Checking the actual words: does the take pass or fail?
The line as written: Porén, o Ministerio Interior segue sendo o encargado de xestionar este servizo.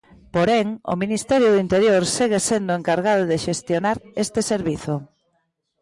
fail